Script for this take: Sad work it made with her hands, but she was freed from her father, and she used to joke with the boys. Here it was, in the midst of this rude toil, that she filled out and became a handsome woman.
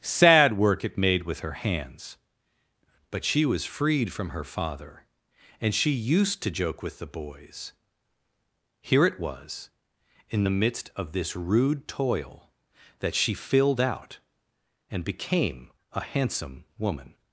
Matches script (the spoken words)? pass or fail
pass